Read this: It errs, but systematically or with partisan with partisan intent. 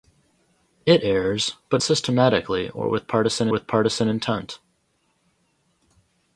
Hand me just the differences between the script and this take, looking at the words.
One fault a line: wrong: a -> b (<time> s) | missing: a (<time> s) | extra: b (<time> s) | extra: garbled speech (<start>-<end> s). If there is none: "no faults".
no faults